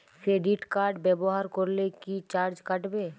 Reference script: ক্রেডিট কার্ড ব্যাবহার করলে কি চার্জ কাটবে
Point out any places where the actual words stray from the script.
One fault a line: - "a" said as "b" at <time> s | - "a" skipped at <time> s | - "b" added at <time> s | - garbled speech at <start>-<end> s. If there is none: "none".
none